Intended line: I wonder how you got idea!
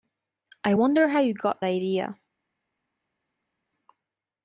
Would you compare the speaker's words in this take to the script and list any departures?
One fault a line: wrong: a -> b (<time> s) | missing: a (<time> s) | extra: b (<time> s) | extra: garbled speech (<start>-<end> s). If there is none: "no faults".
no faults